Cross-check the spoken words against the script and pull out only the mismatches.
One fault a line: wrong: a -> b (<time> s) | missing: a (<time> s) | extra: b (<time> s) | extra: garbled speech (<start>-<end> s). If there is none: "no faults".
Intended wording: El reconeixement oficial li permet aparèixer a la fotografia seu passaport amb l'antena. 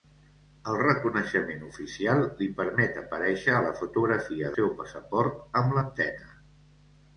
no faults